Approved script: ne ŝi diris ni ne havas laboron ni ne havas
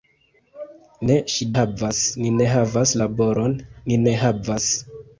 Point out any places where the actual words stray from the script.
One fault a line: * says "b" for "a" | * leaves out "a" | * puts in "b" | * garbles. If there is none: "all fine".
* says "havas" for "diris"